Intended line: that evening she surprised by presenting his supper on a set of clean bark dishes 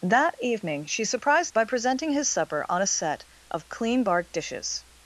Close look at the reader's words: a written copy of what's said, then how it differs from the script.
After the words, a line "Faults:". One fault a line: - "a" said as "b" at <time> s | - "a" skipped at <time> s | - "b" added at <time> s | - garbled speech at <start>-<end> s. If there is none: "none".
that evening she surprised by presenting his supper on a set of clean bark dishes
Faults:
none